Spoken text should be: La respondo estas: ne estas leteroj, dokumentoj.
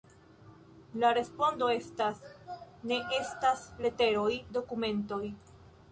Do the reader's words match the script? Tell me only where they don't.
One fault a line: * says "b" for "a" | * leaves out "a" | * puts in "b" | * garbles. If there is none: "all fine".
all fine